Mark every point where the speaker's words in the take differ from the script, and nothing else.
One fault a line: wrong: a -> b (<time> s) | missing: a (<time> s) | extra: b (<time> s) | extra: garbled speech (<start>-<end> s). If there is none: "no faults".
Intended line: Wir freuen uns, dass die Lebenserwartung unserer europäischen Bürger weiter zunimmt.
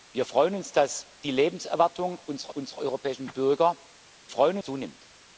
extra: unserer (2.5 s)
wrong: weiter -> freuen (4.3 s)